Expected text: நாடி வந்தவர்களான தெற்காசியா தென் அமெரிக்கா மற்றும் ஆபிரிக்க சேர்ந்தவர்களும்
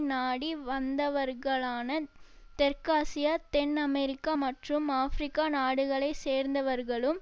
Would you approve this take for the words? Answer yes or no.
no